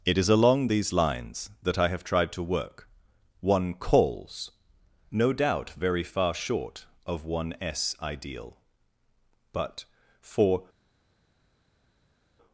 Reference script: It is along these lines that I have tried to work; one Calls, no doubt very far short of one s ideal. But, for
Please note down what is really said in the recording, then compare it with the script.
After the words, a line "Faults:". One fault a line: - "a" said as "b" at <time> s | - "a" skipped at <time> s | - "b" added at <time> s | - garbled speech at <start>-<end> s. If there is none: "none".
It is along these lines that I have tried to work; one Calls, no doubt very far short of one s ideal. But, for
Faults:
none